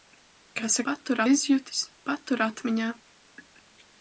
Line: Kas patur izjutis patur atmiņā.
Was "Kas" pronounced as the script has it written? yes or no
yes